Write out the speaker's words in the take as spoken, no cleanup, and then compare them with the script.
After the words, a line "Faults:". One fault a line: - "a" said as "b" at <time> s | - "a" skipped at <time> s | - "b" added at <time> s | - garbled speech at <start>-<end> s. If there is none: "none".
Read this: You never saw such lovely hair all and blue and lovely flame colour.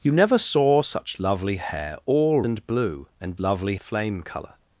You never saw such lovely hair all and blue and lovely flame colour.
Faults:
none